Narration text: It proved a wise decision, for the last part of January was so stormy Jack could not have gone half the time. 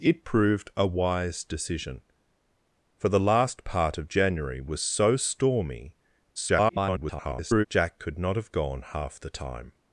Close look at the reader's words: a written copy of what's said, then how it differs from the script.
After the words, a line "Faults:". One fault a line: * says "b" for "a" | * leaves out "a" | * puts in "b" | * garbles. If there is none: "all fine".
It proved a wise decision, for the last part of January was so stormy [garbled] Jack could not have gone half the time.
Faults:
* garbles